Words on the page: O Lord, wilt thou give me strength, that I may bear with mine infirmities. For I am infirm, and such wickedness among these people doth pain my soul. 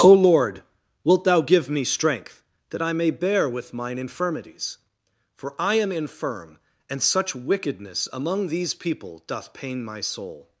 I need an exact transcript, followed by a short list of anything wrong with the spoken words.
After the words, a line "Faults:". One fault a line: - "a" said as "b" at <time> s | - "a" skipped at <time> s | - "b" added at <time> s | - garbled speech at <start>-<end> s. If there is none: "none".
O Lord, wilt thou give me strength, that I may bear with mine infirmities. For I am infirm, and such wickedness among these people doth pain my soul.
Faults:
none